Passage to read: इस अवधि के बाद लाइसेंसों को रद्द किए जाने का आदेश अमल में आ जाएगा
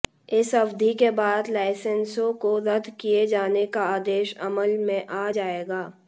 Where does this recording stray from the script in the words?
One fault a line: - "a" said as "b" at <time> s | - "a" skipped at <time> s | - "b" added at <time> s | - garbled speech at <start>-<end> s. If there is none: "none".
none